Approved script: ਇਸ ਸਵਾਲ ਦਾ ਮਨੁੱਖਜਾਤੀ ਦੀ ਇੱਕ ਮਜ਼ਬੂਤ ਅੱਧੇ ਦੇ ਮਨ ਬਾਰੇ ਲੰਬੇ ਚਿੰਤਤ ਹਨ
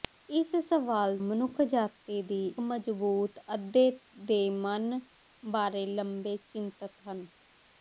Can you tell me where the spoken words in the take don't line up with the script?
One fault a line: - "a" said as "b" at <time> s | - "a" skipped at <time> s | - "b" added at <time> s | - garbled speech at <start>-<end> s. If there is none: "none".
- "ਦਾ" skipped at 1.2 s
- "ਇੱਕ" skipped at 2.4 s